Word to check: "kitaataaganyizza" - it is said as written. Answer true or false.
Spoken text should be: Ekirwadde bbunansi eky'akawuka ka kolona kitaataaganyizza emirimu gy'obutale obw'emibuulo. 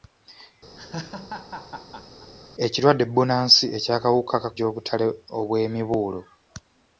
false